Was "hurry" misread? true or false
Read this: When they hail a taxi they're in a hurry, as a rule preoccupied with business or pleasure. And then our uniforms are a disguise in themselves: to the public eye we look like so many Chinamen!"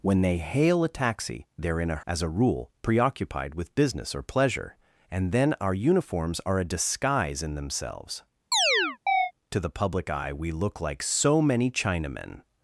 true